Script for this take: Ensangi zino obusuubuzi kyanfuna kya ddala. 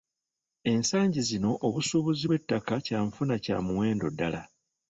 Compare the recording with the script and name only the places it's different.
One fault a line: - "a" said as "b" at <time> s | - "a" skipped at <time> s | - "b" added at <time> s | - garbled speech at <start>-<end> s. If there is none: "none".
- "bw'ettaka" added at 2.2 s
- "muwendo" added at 3.6 s